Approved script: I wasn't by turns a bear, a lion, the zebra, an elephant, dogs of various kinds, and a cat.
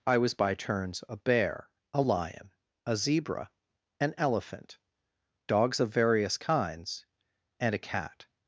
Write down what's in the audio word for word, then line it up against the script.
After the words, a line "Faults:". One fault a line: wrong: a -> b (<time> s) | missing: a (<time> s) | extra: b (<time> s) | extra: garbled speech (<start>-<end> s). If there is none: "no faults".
I was by turns a bear, a lion, a zebra, an elephant, dogs of various kinds, and a cat.
Faults:
wrong: wasn't -> was (0.2 s)
wrong: the -> a (2.8 s)